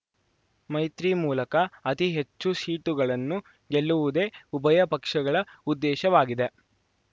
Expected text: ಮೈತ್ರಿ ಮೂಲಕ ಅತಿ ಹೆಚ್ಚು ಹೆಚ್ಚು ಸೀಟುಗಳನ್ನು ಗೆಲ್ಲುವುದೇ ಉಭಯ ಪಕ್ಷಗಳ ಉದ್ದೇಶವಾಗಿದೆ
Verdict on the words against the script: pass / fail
fail